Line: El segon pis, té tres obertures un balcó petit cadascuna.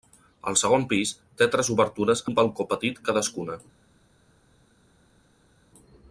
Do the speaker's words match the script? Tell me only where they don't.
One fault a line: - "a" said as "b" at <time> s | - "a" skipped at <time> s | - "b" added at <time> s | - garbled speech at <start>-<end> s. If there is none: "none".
none